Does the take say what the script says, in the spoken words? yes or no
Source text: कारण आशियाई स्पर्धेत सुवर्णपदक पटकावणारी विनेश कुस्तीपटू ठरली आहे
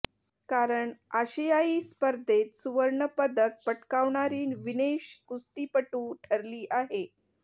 yes